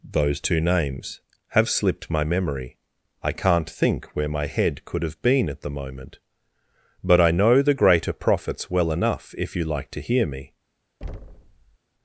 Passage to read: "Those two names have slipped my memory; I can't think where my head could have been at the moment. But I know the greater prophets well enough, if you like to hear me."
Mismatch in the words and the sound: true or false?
true